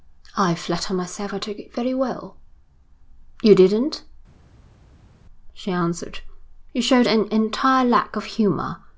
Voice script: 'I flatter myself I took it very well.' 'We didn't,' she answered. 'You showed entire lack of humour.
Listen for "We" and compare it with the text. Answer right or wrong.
wrong